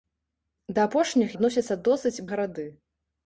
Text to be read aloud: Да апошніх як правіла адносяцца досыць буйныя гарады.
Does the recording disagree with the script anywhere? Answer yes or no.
yes